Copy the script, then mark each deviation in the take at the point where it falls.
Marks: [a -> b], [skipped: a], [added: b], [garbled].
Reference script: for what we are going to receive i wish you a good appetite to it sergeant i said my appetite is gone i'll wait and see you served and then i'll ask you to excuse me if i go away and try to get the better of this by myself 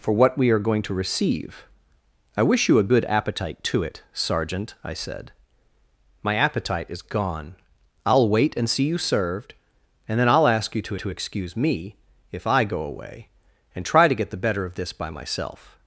for what we are going to receive i wish you a good appetite to it sergeant i said my appetite is gone i'll wait and see you served and then i'll ask you to [added: to] excuse me if i go away and try to get the better of this by myself